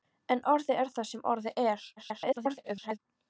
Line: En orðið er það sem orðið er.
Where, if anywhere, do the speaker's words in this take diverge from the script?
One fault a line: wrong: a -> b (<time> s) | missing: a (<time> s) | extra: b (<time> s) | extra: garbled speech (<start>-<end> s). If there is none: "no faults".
extra: garbled speech (2.0-3.0 s)